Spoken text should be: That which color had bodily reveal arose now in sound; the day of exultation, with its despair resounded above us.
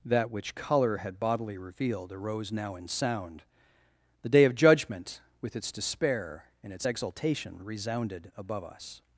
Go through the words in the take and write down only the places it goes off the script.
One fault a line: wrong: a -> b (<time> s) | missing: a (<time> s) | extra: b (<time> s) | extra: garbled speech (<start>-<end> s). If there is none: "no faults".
wrong: reveal -> revealed (1.6 s)
wrong: exultation -> judgment (4.5 s)
extra: and its exultation (6.6 s)